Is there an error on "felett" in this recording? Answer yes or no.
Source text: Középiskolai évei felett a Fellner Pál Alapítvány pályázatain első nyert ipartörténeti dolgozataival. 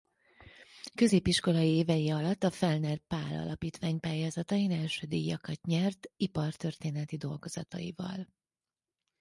yes